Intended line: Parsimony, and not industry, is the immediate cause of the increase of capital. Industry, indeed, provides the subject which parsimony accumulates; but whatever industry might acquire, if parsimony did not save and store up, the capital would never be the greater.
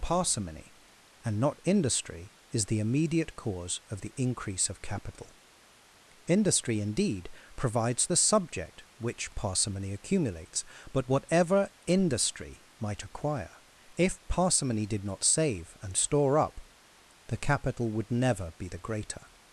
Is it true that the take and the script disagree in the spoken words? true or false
false